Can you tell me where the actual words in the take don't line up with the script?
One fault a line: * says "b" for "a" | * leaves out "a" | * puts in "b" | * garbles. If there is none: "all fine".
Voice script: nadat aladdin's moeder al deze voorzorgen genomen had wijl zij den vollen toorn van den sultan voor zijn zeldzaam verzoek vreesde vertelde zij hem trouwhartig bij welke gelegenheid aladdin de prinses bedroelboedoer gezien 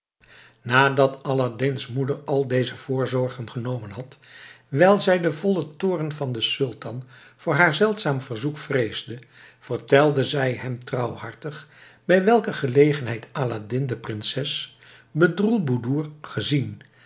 * says "haar" for "zijn"